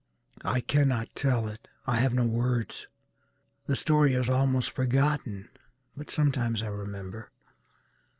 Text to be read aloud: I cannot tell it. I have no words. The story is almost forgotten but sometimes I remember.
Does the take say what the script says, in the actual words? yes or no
yes